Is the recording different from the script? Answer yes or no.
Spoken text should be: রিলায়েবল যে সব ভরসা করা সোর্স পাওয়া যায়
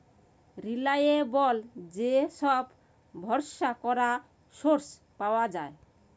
no